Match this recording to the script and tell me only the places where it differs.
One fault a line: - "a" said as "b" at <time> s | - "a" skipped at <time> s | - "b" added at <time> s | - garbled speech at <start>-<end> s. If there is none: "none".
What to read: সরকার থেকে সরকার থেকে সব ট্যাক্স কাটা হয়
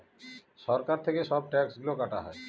- "সরকার থেকে" skipped at 1.2 s
- "গুলো" added at 1.8 s